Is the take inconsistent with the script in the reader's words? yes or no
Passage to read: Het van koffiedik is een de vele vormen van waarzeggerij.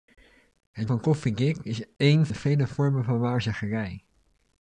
no